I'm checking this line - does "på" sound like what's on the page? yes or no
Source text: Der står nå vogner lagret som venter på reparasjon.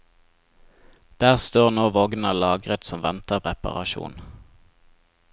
no